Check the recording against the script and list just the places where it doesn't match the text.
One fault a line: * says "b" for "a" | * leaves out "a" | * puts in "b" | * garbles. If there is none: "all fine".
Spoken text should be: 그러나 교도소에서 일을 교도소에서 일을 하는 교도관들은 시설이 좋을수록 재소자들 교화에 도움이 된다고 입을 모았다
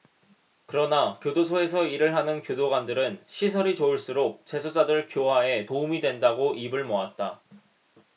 * leaves out "교도소에서 일을"